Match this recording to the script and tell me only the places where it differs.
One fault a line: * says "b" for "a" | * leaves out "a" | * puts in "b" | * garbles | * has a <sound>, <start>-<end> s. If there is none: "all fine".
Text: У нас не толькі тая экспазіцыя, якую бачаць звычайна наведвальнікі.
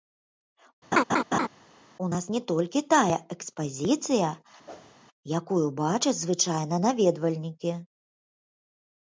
* has a laugh, 0.9-1.5 s
* has a whoosh, 4.7-4.9 s